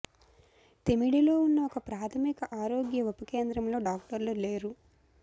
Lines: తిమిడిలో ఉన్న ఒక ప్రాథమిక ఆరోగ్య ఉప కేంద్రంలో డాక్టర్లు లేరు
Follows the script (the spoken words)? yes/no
yes